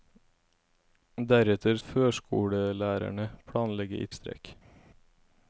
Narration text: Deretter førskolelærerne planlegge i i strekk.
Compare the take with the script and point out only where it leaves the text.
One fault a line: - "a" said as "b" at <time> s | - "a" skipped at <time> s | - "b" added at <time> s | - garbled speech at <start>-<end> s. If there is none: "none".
none